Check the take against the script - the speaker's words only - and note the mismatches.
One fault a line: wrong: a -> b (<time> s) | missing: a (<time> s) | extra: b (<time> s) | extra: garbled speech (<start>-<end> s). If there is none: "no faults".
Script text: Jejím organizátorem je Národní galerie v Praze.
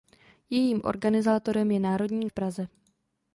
missing: galerie (2.3 s)